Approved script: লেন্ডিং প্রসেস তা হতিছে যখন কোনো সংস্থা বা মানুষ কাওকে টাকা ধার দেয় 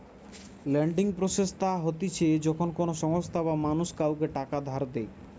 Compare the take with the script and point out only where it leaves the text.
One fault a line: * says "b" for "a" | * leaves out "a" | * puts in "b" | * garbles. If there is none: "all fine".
all fine